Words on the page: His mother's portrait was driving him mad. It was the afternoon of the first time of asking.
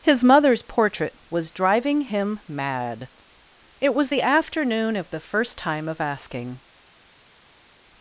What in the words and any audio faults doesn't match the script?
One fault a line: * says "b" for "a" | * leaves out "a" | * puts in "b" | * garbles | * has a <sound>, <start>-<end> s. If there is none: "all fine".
all fine